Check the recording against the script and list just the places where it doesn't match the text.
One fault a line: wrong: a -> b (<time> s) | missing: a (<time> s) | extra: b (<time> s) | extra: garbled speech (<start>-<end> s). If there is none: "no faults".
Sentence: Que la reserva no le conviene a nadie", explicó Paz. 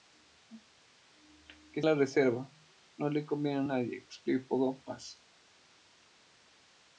no faults